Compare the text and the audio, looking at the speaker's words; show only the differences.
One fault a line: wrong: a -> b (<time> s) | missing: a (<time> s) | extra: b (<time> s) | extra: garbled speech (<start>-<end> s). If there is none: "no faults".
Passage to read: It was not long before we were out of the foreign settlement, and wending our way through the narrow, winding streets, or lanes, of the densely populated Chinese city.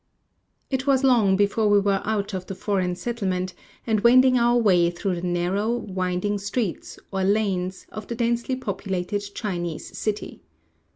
missing: not (1.1 s)